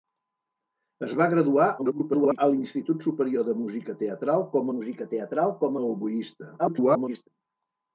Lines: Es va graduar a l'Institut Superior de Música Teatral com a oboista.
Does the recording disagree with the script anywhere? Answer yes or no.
yes